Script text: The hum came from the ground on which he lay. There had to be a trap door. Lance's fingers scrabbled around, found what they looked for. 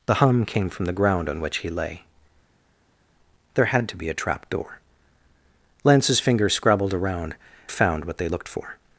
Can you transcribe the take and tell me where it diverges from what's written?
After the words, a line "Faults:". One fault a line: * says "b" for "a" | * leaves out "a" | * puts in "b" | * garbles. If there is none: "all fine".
The hum came from the ground on which he lay. There had to be a trap door. Lance's fingers scrabbled around, found what they looked for.
Faults:
all fine